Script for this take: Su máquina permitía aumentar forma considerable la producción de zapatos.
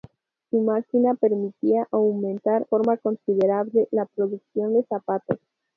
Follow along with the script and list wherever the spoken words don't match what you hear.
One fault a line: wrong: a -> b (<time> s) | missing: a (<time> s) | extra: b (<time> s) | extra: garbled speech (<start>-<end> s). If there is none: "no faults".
no faults